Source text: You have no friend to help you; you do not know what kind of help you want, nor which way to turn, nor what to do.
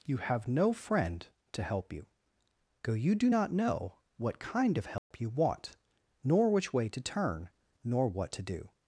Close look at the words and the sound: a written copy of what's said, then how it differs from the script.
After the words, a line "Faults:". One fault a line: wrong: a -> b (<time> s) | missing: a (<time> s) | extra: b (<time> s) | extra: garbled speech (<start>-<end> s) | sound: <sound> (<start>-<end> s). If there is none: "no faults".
You have no friend to help you; go you do not know what kind of help you want, nor which way to turn, nor what to do.
Faults:
extra: go (2.8 s)
sound: dropout (5.0-5.1 s)